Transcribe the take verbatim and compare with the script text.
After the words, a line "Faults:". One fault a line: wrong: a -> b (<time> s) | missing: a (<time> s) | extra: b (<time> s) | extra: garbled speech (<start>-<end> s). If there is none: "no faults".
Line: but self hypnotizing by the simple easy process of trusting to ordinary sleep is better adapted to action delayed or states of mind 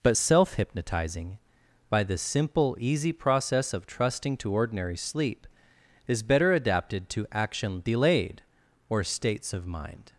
but self hypnotizing by the simple easy process of trusting to ordinary sleep is better adapted to action delayed or states of mind
Faults:
no faults